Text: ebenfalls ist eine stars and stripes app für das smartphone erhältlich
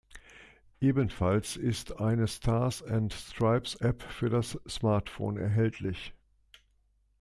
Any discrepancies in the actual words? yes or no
no